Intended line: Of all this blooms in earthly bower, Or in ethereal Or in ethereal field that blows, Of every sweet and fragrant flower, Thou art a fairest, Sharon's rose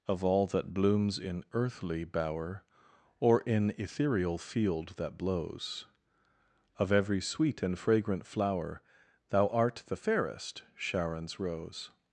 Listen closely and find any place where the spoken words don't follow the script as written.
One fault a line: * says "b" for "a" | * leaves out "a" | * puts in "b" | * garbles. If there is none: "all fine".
* says "that" for "this"
* leaves out "Or in ethereal"
* says "the" for "a"